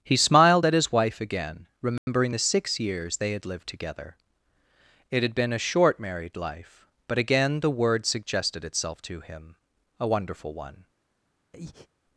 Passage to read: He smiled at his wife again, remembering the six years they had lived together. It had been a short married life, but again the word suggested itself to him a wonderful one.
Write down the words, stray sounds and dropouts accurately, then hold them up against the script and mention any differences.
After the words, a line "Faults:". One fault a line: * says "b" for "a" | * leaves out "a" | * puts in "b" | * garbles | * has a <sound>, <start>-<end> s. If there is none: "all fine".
He smiled at his wife again, remembering the six years they had lived together. It had been a short married life, but again the word suggested itself to him a wonderful one.
Faults:
* has a dropout, 2.0-2.1 s
* has a breath, 11.5-11.9 s